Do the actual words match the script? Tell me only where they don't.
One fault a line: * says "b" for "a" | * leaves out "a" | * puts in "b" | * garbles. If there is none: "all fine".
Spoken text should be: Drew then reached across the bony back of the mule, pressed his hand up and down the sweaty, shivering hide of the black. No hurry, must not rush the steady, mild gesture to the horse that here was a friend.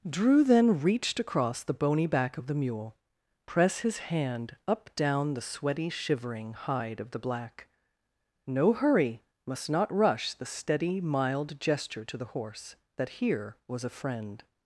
* says "press" for "pressed"
* leaves out "and"